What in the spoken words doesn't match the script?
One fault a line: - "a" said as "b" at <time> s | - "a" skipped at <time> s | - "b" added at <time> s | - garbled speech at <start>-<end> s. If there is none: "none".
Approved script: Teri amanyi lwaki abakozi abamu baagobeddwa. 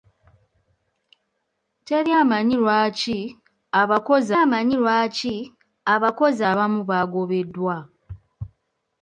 - "amanyi lwaki abakozi" added at 4.4 s